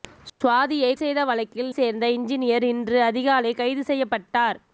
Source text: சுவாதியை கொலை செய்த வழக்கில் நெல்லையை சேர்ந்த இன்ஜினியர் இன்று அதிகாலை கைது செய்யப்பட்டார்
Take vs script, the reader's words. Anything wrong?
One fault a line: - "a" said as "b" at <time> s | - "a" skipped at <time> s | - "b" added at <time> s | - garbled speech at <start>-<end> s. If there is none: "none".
- "கொலை" skipped at 0.9 s
- "நெல்லையை" skipped at 1.7 s